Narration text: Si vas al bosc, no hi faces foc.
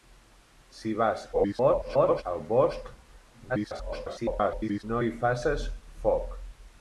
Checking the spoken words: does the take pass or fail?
fail